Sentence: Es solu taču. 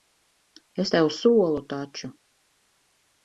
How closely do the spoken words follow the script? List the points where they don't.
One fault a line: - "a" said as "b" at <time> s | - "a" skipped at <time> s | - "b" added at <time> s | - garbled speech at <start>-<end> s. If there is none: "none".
- "tev" added at 0.9 s